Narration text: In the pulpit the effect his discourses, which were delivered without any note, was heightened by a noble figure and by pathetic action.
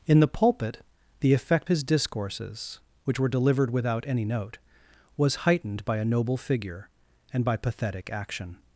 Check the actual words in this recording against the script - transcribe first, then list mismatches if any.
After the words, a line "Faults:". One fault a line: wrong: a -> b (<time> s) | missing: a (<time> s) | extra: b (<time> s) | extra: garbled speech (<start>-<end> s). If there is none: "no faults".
In the pulpit the effect his discourses, which were delivered without any note, was heightened by a noble figure and by pathetic action.
Faults:
no faults